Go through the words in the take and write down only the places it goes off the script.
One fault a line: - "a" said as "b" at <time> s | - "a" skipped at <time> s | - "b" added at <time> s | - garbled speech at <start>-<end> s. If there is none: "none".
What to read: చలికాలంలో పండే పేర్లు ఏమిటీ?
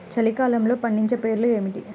none